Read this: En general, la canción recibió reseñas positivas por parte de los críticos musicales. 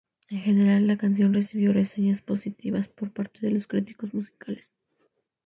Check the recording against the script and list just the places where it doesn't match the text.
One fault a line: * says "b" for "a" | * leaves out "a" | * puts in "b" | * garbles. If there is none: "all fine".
all fine